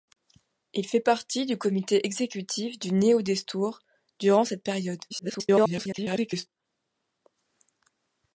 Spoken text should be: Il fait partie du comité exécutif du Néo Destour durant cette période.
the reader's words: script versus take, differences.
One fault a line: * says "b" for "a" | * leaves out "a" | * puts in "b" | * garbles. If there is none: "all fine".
* garbles